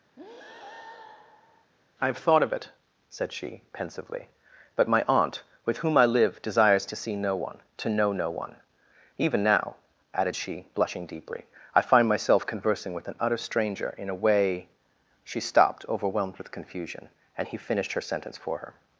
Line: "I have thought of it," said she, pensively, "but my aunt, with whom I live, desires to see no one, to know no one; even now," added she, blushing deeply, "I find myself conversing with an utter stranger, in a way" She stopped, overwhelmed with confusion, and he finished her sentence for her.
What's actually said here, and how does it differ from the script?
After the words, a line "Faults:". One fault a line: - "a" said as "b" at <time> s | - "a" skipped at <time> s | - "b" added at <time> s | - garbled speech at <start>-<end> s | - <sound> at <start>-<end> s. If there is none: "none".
"I have thought of it," said she, pensively, "but my aunt, with whom I live, desires to see no one, to know no one; even now," added she, blushing deeply, "I find myself conversing with an utter stranger, in a way" She stopped, overwhelmed with confusion, and he finished her sentence for her.
Faults:
- breath at 0.2-1.7 s